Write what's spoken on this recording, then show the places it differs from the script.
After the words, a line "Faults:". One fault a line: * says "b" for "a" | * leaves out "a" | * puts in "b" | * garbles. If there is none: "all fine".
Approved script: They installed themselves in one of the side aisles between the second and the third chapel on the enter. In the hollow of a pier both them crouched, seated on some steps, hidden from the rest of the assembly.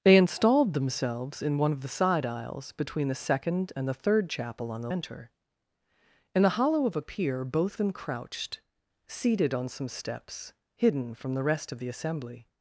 They installed themselves in one of the side aisles between the second and the third chapel on the enter. In the hollow of a pier both them crouched, seated on some steps, hidden from the rest of the assembly.
Faults:
all fine